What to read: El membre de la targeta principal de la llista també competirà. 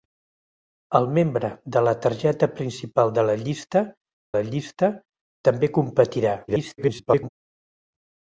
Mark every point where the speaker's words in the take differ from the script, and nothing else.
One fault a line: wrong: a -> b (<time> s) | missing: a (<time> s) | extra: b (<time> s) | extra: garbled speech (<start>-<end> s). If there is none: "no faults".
extra: la llista (4.4 s)
extra: garbled speech (6.5-7.3 s)